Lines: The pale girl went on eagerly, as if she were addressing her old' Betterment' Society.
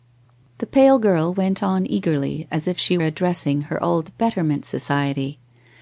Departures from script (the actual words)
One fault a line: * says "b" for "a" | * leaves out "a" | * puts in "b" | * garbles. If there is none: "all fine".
* leaves out "were"